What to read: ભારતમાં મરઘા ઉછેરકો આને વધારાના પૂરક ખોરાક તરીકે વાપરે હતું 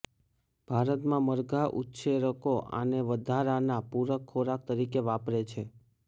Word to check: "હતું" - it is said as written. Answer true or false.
false